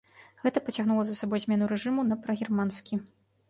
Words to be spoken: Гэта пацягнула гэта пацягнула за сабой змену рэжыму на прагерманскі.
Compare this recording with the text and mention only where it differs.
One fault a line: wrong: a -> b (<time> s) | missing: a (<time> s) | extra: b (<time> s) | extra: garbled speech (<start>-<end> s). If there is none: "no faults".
missing: гэта пацягнула (1.0 s)